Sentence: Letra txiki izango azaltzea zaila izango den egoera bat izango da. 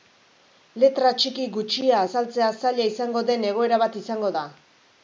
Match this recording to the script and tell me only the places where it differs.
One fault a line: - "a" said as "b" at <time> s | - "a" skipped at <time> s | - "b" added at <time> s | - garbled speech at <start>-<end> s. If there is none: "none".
- "izango" said as "gutxia" at 1.6 s